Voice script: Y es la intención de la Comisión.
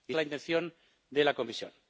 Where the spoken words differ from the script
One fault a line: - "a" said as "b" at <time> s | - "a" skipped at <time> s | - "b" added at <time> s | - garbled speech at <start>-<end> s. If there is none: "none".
none